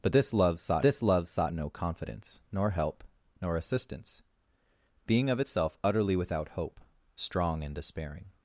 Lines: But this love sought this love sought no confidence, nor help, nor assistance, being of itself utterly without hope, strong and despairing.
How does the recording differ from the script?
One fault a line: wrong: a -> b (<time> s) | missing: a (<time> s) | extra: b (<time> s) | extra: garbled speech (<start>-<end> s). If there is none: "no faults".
no faults